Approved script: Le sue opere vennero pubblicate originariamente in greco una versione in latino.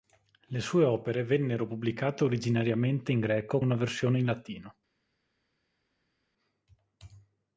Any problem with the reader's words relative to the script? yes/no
no